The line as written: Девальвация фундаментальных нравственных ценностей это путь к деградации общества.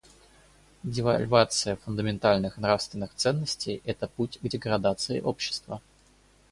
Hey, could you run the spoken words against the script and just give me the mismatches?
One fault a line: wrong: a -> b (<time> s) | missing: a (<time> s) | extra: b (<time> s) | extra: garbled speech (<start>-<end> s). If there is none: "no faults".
no faults